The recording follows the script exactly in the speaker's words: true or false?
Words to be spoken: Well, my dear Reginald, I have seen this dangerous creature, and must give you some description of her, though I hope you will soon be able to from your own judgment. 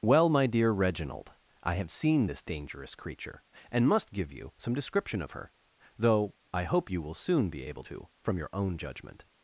true